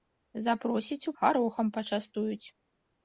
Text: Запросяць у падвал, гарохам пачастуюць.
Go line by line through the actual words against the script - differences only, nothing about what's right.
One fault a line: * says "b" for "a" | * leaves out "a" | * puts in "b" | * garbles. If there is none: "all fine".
* leaves out "падвал"